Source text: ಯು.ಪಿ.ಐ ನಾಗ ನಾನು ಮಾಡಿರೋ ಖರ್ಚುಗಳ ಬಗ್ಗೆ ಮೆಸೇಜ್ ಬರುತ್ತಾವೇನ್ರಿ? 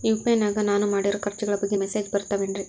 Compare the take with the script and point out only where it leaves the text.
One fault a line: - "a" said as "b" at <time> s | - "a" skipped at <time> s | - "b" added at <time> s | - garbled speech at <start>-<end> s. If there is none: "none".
none